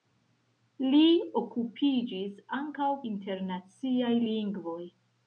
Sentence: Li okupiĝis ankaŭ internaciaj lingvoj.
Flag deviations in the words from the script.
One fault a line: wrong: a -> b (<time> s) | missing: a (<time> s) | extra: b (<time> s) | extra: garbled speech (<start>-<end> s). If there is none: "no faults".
no faults